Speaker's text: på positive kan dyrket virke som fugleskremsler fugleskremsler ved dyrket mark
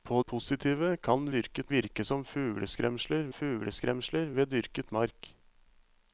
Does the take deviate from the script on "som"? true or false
false